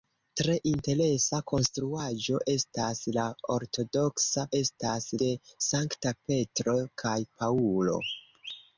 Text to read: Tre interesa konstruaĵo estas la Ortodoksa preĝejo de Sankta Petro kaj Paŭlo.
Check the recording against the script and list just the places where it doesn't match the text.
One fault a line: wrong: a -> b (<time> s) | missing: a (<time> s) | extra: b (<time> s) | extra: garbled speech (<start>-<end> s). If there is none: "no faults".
wrong: preĝejo -> estas (4.6 s)